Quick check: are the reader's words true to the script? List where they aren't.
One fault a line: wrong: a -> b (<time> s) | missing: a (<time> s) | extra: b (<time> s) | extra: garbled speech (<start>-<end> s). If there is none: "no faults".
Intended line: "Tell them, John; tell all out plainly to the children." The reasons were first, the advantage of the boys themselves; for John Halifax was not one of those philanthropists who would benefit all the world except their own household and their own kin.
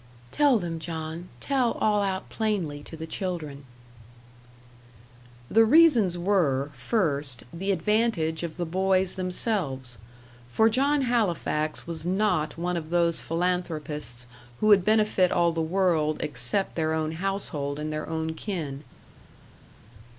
no faults